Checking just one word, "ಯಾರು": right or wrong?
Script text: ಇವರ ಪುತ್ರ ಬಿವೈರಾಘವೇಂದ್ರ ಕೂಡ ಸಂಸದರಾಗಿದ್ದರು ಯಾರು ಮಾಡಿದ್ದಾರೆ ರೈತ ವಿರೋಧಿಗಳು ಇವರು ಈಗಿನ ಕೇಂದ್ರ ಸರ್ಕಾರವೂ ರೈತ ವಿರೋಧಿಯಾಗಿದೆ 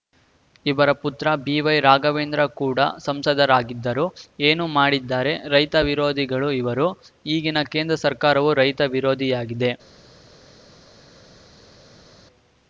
wrong